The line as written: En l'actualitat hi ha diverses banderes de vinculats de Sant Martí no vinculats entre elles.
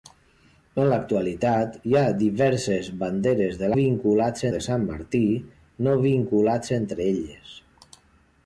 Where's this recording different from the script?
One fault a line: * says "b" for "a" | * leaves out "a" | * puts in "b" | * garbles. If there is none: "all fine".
all fine